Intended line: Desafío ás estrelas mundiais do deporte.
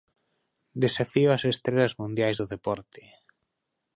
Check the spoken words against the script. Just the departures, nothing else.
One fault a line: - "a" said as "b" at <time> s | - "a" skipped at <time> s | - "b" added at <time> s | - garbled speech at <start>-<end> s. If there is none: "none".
none